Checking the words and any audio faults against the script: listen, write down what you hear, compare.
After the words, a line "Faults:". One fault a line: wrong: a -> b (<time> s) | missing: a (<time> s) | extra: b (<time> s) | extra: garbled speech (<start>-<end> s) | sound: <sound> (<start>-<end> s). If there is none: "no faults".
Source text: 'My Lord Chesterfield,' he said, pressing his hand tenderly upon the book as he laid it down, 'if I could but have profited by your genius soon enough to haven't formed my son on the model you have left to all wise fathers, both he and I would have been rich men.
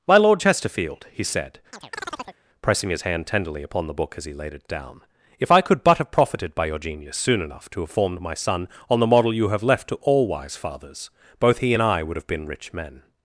'My Lord Chesterfield,' he said, pressing his hand tenderly upon the book as he laid it down, 'if I could but have profited by your genius soon enough to have formed my son on the model you have left to all wise fathers, both he and I would have been rich men.
Faults:
sound: chirp (1.7-2.4 s)
wrong: haven't -> have (7.8 s)